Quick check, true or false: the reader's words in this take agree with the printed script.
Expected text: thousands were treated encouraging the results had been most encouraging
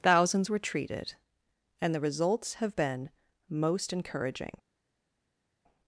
false